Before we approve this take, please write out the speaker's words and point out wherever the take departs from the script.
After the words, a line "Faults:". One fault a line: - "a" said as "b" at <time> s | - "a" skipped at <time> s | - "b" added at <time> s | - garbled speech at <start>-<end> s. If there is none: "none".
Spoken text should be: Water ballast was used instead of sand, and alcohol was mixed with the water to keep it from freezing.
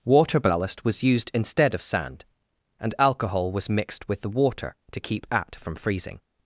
Water ballast was used instead of sand, and alcohol was mixed with the water to keep at from freezing.
Faults:
- "it" said as "at" at 5.3 s